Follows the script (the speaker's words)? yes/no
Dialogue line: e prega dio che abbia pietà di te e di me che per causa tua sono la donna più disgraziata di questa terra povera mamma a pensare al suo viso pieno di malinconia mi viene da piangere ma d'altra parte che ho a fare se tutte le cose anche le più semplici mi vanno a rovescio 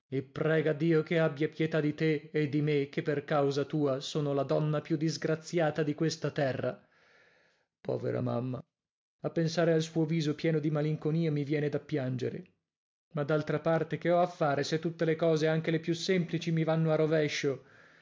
yes